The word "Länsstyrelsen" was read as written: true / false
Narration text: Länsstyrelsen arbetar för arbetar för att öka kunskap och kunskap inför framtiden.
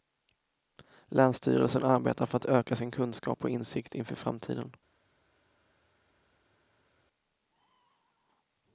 true